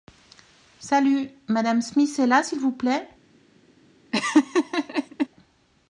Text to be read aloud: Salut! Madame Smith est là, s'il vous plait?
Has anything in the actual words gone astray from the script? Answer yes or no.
no